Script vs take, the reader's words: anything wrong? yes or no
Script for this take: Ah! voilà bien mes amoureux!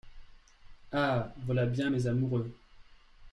no